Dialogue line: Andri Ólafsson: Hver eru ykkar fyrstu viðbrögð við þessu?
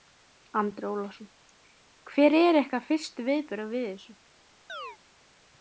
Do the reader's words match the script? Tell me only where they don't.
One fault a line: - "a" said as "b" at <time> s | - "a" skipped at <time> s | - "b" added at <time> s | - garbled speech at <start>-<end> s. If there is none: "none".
none